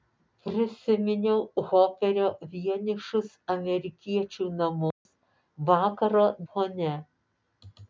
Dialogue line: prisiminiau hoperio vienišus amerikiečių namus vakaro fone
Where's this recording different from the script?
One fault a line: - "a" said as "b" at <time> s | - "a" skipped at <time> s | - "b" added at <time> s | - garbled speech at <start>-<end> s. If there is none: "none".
none